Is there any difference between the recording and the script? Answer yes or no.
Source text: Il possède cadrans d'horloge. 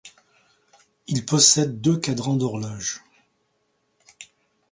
yes